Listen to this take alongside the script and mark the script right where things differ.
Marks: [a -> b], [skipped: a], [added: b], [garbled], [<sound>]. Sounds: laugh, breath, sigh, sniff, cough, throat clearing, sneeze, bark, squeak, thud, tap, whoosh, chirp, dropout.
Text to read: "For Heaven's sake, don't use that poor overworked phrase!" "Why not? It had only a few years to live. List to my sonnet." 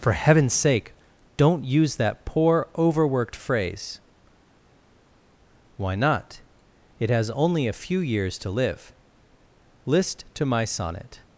"For Heaven's sake, don't use that poor overworked phrase!" "Why not? It [had -> has] only a few years to live. List to my sonnet."